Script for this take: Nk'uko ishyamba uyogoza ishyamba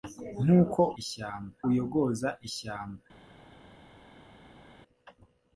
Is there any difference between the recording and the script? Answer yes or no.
no